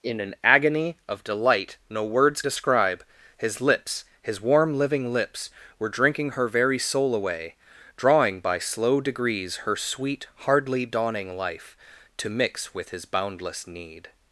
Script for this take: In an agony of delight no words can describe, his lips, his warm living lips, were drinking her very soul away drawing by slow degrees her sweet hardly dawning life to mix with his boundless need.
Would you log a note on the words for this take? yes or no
yes